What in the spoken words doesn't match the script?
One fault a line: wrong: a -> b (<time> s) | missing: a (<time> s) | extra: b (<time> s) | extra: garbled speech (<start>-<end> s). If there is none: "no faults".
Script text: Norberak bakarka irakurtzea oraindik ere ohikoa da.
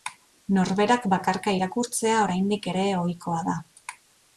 no faults